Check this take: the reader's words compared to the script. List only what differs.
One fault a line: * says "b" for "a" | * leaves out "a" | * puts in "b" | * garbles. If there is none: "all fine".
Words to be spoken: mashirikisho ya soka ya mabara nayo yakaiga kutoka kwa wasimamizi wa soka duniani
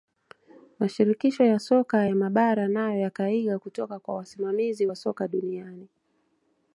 all fine